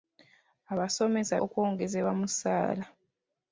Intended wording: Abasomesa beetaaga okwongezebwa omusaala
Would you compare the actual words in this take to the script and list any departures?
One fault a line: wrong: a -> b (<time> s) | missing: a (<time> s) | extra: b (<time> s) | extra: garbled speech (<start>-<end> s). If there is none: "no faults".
missing: beetaaga (1.4 s)